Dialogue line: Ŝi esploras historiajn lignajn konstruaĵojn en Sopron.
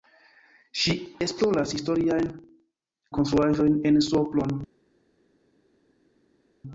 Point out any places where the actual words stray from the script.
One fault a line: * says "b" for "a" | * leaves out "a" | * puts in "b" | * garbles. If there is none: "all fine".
* leaves out "lignajn"